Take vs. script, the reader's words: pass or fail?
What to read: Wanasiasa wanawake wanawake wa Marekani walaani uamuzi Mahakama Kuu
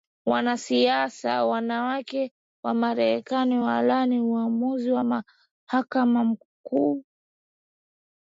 fail